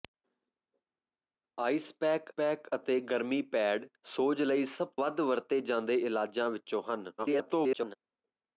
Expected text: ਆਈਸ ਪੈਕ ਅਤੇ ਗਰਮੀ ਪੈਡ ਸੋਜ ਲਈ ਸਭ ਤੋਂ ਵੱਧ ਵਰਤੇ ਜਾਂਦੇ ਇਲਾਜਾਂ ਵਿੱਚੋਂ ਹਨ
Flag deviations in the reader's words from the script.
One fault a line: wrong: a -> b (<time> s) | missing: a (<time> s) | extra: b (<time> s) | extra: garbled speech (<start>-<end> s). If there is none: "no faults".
extra: ਪੈਕ (2.3 s)
missing: ਤੋਂ (4.9 s)
extra: garbled speech (7.2-8.0 s)